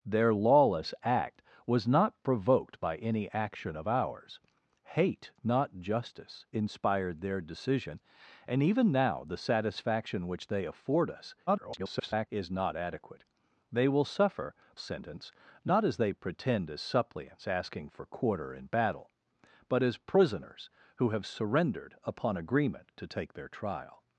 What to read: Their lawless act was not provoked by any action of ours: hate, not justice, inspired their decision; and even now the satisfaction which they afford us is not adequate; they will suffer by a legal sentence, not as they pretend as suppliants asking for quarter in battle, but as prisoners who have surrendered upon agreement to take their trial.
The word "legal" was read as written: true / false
false